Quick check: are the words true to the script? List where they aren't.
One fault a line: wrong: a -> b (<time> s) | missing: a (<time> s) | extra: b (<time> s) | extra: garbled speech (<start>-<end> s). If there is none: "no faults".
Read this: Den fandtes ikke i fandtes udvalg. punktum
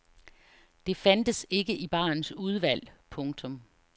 wrong: Den -> Det (0.8 s)
wrong: fandtes -> barens (1.9 s)